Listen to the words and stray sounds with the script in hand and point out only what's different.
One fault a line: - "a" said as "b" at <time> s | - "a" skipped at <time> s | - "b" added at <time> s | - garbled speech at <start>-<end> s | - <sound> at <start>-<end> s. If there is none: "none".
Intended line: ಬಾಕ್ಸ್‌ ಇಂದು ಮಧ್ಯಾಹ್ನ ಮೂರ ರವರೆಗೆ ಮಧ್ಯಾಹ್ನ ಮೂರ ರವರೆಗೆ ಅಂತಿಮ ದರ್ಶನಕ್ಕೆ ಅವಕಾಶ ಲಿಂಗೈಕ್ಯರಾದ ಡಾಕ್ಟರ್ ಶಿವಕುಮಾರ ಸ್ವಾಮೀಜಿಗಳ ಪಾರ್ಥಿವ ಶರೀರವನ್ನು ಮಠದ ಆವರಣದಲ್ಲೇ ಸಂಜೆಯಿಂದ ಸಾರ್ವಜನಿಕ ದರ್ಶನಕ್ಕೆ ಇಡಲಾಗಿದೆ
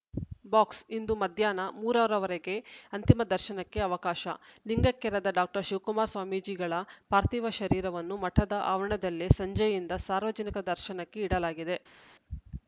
- "ಮಧ್ಯಾಹ್ನ ಮೂರ ರವರೆಗೆ" skipped at 2.5 s